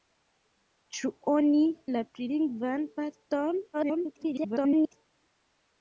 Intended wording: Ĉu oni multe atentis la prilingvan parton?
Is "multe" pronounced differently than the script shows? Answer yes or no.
yes